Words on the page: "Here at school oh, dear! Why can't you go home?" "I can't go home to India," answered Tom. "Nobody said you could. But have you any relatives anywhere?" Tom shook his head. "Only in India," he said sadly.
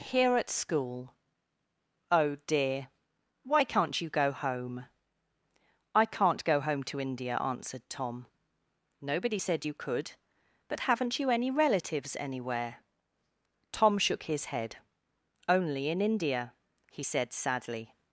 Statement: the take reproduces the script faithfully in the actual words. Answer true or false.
false